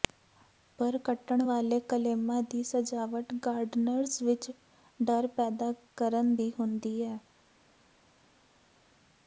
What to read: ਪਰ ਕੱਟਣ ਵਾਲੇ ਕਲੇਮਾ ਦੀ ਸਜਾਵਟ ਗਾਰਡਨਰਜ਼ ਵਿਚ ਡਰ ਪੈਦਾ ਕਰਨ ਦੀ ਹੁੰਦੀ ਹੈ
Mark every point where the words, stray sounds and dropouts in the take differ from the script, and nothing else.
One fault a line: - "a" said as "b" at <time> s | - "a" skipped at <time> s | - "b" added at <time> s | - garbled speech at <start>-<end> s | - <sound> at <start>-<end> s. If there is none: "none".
none